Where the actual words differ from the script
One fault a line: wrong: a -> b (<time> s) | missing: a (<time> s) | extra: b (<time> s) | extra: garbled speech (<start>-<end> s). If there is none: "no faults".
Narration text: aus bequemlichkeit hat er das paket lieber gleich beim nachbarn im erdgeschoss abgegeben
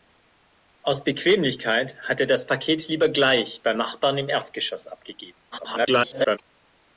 extra: garbled speech (5.5-6.4 s)